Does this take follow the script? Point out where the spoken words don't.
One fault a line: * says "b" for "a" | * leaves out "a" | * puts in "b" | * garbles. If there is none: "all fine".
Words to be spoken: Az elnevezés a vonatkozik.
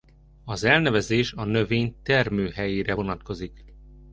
* puts in "növény termőhelyére"